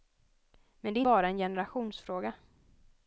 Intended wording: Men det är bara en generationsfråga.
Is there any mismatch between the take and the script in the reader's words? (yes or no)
no